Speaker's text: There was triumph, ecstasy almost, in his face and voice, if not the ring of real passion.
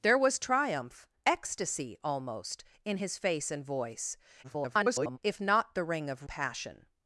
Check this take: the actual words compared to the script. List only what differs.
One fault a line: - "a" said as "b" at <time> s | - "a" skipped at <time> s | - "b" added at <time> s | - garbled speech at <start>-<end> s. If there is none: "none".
- garbled speech at 4.4-5.2 s
- "real" skipped at 6.3 s